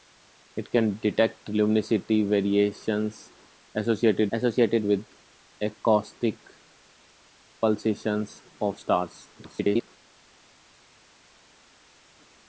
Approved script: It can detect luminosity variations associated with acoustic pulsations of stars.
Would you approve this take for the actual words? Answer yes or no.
no